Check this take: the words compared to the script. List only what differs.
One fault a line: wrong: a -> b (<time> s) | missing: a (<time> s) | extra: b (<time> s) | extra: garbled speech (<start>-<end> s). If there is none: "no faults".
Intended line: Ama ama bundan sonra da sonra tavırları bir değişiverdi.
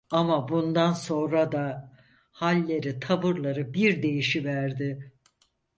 missing: ama (0.5 s)
wrong: sonra -> halleri (2.3 s)